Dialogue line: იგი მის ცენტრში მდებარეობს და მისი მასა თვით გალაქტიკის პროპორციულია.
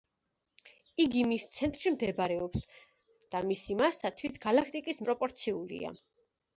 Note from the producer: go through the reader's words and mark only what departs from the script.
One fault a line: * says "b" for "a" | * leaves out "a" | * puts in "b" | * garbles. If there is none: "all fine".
all fine